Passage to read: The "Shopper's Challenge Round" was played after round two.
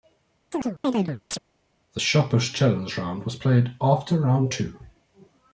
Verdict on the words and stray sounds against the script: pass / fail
fail